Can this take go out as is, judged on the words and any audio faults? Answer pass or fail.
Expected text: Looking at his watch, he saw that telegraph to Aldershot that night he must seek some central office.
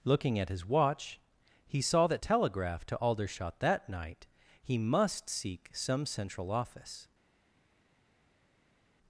pass